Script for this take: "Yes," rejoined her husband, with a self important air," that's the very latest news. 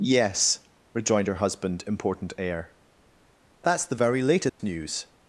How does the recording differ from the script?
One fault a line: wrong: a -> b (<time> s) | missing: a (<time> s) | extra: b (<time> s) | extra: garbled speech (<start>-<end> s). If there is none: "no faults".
missing: with a self (1.8 s)